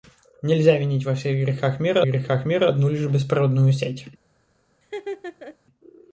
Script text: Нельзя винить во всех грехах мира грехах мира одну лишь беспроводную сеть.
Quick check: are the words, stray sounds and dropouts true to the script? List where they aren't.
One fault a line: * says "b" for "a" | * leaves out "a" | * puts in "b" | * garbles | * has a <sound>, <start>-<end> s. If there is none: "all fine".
* has a laugh, 4.8-5.6 s